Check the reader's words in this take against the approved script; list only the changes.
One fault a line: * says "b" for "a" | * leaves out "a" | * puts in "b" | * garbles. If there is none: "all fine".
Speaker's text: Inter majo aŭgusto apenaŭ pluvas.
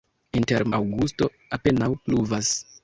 * leaves out "majo"